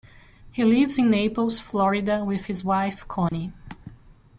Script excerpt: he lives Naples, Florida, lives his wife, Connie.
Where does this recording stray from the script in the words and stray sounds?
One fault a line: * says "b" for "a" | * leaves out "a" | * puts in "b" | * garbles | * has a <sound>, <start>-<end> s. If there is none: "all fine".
* puts in "in"
* says "with" for "lives"
* has a dropout, 3.3-3.3 s